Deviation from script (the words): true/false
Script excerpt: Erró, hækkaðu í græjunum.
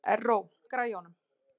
true